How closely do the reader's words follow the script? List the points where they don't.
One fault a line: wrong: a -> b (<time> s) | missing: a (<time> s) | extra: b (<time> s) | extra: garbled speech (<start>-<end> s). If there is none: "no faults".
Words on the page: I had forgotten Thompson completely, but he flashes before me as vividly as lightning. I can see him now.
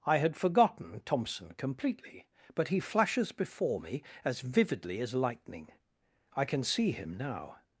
no faults